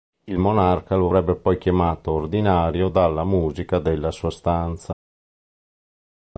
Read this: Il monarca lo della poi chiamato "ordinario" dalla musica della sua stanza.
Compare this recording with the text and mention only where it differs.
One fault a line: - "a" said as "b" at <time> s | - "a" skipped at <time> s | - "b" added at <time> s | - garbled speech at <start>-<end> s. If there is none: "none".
- "della" said as "avrebbe" at 1.1 s